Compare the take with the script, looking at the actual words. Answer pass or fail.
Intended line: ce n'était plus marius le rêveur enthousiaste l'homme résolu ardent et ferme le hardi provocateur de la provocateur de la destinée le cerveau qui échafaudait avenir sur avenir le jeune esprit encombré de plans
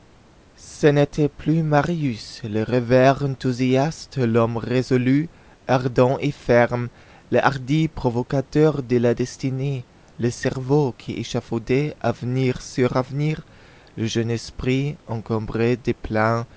fail